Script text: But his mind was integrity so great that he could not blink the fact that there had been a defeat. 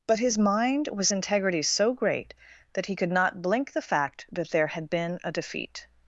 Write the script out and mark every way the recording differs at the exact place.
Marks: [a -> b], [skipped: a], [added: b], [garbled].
But his mind was integrity so great that he could not blink the fact that there had been a defeat.